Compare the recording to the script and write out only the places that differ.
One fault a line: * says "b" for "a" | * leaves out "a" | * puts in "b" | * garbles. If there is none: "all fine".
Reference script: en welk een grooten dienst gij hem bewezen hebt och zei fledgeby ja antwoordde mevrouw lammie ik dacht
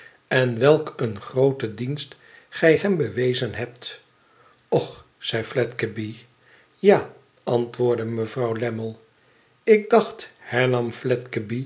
all fine